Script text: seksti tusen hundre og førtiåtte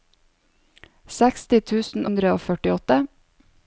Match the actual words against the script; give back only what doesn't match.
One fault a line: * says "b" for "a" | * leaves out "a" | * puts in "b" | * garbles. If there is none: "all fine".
all fine